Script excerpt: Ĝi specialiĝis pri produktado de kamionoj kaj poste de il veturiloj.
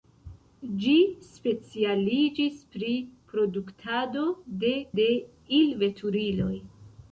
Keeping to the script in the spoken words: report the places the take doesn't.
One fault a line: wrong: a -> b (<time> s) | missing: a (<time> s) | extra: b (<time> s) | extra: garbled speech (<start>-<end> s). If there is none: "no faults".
missing: kamionoj kaj poste (4.7 s)